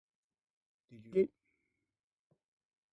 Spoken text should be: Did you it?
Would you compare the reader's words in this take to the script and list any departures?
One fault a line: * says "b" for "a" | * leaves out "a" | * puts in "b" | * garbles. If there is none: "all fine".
all fine